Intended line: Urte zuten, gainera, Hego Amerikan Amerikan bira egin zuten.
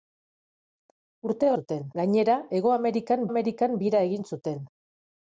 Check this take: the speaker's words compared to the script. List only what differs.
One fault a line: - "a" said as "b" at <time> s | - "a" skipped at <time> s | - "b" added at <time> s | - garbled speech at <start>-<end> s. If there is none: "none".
none